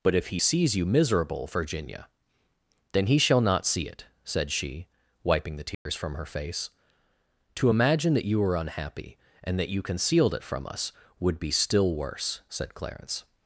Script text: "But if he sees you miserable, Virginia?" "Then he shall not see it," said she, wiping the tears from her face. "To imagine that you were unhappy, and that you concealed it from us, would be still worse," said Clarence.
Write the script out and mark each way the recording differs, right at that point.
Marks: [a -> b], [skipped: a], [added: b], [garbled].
"But if he sees you miserable, Virginia?" "Then he shall not see it," said she, wiping the tears from her face. "To imagine that you were unhappy, and that you concealed it from us, would be still worse," said Clarence.